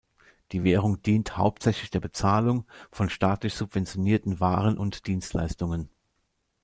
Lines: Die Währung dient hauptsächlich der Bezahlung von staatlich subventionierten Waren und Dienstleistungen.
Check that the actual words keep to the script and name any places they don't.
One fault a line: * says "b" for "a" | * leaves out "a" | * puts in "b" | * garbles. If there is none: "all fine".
all fine